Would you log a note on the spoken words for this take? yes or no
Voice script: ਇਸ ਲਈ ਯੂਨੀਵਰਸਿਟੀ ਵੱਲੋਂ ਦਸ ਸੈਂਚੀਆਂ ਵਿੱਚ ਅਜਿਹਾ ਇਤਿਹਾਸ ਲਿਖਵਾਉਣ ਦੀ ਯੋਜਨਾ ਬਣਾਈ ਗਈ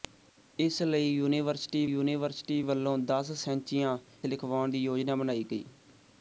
yes